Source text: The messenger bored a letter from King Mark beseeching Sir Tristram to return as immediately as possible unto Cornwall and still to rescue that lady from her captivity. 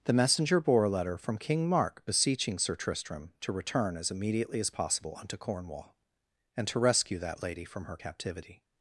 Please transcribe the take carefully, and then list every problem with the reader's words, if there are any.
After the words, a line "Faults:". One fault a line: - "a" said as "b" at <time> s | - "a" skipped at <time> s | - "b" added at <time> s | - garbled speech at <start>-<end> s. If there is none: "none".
The messenger bore a letter from King Mark beseeching Sir Tristram to return as immediately as possible unto Cornwall and to rescue that lady from her captivity.
Faults:
- "bored" said as "bore" at 0.6 s
- "still" skipped at 6.7 s